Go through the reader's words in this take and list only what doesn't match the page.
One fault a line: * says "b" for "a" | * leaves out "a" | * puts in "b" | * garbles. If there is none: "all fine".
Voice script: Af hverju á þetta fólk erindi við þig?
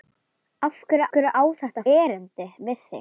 * puts in "hverju"
* leaves out "fólk"